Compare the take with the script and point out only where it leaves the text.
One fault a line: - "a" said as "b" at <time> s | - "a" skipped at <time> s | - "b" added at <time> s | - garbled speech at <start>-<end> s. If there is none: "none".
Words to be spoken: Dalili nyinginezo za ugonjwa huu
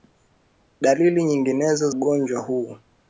- "za" skipped at 1.9 s